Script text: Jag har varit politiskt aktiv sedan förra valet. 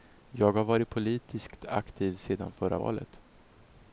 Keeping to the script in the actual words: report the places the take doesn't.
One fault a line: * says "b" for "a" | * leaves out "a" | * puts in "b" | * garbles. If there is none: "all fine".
all fine